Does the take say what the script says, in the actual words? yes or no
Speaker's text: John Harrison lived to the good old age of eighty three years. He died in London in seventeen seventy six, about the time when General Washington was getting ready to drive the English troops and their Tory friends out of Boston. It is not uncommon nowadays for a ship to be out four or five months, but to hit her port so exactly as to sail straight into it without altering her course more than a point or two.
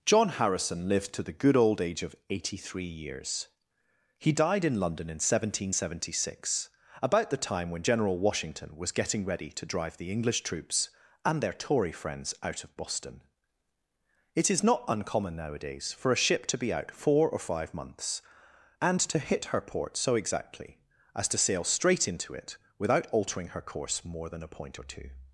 no